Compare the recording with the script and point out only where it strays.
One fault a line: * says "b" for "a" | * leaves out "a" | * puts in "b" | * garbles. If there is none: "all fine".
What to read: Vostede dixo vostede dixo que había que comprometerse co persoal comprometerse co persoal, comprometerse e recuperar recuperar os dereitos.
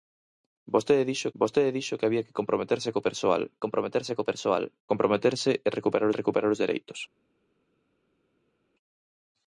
all fine